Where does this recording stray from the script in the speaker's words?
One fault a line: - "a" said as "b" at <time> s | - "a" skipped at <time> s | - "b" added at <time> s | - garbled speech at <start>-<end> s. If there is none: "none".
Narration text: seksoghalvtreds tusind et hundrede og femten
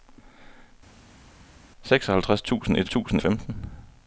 - "hundrede" said as "tusind" at 2.9 s